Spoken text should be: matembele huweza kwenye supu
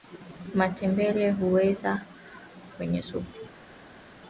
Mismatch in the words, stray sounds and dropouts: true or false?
false